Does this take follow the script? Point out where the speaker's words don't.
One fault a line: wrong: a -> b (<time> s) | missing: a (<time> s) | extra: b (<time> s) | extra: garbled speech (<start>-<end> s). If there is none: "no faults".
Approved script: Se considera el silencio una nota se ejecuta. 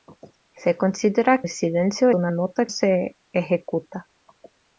no faults